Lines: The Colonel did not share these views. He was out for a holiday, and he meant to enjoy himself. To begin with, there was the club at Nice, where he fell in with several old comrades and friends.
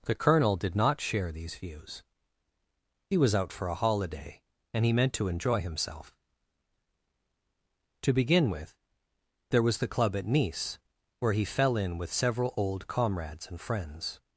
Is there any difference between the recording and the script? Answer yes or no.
no